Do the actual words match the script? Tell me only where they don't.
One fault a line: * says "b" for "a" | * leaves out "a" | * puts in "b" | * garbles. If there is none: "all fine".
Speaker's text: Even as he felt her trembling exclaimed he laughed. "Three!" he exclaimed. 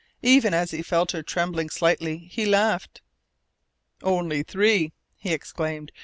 * says "slightly" for "exclaimed"
* puts in "Only"